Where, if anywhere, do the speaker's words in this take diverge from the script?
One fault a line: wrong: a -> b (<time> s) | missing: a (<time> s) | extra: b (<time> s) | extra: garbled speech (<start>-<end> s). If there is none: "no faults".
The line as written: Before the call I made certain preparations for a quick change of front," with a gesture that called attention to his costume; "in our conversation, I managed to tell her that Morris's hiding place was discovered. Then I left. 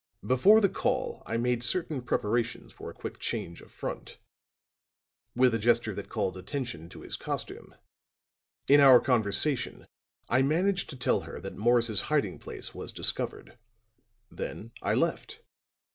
no faults